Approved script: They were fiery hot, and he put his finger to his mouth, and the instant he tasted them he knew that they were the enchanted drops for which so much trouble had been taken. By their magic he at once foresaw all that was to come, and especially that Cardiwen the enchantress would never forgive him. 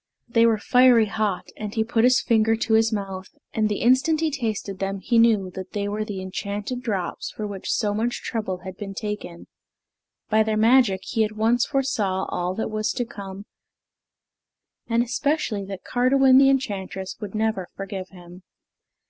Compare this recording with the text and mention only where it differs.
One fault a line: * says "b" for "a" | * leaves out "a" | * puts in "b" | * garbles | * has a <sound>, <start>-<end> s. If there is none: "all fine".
all fine